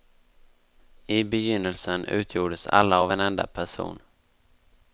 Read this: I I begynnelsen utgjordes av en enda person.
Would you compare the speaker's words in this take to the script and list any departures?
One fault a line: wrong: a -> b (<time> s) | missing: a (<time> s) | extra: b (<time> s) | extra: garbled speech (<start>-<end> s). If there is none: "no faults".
missing: I (1.2 s)
extra: alla (2.7 s)